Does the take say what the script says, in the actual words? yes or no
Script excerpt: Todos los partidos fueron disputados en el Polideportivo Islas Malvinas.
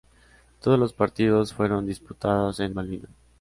no